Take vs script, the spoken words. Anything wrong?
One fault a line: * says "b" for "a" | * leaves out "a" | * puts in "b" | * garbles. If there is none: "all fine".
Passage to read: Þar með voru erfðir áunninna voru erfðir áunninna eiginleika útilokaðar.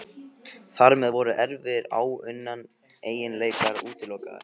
* leaves out "voru erfðir áunninna"